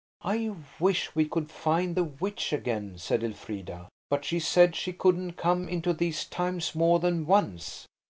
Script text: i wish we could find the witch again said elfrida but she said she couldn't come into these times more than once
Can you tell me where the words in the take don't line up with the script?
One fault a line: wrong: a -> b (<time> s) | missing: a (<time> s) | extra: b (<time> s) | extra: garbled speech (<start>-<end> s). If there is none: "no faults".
no faults